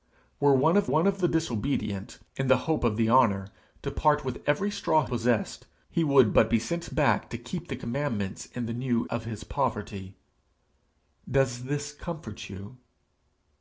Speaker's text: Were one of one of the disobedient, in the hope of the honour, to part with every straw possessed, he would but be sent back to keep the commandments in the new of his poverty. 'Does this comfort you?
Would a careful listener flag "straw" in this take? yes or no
no